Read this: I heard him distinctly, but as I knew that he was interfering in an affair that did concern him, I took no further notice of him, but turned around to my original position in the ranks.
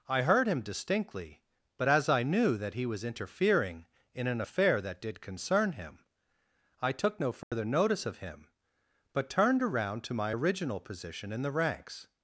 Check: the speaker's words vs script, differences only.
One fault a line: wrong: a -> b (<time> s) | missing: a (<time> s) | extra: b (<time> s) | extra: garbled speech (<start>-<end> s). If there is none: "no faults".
no faults